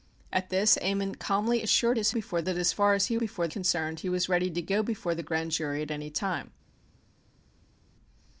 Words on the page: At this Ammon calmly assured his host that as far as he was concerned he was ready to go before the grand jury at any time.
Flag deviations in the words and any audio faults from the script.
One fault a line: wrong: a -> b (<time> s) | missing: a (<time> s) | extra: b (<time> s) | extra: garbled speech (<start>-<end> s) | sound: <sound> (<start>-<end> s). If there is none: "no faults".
wrong: host -> before (2.1 s)
wrong: was -> before (3.1 s)